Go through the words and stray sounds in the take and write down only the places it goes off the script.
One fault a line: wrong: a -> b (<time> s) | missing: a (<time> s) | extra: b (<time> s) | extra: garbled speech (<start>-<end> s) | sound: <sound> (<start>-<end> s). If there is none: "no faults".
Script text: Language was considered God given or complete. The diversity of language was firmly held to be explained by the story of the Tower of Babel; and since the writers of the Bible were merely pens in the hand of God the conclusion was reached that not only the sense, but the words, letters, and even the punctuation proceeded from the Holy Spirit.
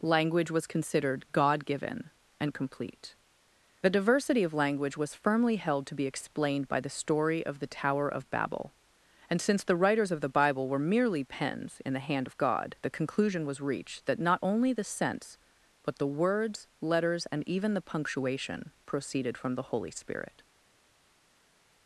wrong: or -> and (2.4 s)